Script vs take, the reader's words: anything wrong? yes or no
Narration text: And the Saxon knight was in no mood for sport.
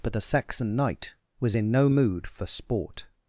yes